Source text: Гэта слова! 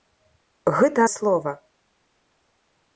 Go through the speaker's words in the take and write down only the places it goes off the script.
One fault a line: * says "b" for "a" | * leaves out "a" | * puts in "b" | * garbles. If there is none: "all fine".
all fine